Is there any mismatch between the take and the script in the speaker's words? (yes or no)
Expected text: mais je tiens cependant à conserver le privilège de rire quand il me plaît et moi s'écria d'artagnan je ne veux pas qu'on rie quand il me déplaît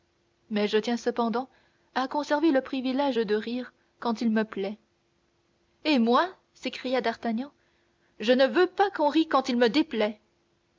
no